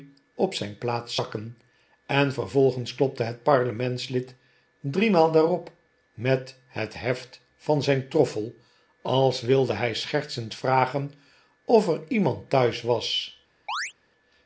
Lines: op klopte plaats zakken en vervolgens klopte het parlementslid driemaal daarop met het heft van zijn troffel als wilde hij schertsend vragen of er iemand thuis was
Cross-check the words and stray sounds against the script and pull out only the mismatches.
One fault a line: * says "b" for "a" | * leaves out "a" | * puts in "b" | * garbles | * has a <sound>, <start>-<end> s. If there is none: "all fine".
* says "zijn" for "klopte"
* has a chirp, 13.7-13.9 s